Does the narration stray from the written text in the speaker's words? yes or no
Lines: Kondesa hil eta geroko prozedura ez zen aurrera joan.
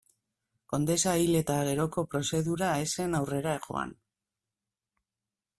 no